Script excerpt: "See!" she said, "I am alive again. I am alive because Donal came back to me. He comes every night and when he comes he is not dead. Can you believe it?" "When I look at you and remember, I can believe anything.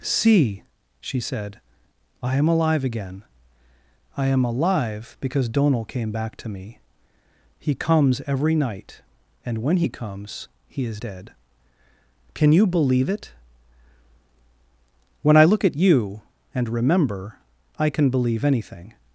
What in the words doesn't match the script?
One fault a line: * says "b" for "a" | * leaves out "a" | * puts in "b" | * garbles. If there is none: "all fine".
* leaves out "not"